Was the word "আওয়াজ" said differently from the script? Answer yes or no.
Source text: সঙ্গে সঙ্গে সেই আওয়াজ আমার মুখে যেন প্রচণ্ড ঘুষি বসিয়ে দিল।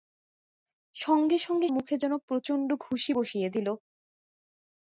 yes